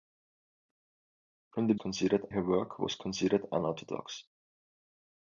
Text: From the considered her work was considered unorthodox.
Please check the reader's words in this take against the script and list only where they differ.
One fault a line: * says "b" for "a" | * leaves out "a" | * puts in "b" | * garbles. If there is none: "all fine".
all fine